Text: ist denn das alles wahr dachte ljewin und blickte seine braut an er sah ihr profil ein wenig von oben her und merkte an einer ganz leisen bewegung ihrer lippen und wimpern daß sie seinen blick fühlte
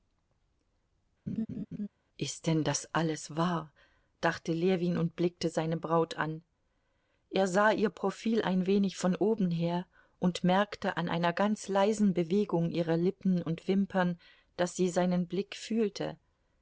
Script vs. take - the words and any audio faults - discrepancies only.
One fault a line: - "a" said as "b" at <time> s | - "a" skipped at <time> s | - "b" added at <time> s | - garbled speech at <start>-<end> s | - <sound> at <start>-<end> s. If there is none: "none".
- laugh at 1.3-1.9 s